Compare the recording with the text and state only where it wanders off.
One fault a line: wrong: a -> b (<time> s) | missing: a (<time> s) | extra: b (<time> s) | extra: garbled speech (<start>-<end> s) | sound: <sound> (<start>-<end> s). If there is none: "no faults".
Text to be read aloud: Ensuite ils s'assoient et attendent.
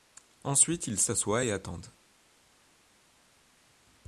no faults